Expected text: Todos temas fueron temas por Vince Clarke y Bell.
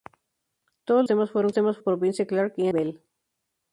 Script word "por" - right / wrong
right